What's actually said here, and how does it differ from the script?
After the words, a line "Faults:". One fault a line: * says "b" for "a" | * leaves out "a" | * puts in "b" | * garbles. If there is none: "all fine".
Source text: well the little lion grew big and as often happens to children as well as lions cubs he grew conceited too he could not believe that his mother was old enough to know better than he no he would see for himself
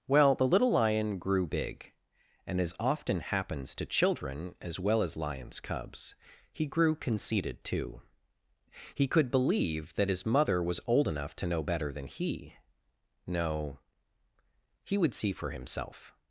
well the little lion grew big and as often happens to children as well as lions cubs he grew conceited too he could believe that his mother was old enough to know better than he no he would see for himself
Faults:
* leaves out "not"